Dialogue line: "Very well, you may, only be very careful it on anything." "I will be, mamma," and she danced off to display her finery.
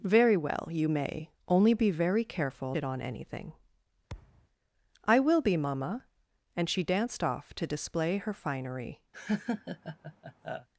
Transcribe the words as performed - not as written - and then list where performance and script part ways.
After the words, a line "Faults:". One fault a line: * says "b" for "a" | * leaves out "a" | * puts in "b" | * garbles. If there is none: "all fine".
"Very well, you may, only be very careful it on anything." "I will be, mamma," and she danced off to display her finery.
Faults:
all fine